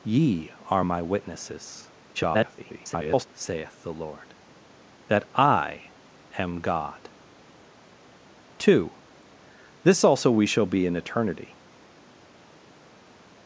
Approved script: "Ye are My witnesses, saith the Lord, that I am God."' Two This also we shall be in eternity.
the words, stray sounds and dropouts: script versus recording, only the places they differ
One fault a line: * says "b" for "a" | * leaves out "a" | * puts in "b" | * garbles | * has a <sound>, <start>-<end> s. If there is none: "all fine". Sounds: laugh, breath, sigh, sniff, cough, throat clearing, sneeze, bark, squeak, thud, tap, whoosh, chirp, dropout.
* garbles